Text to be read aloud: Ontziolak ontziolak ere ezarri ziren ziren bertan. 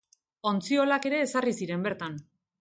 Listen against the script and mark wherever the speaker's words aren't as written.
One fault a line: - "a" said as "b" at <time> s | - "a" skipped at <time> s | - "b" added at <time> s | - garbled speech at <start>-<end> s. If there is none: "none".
- "ontziolak" skipped at 1.1 s
- "ziren" skipped at 1.9 s